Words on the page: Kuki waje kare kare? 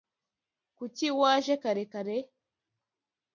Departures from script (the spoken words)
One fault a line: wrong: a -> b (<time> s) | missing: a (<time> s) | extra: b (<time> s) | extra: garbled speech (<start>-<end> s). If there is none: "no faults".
no faults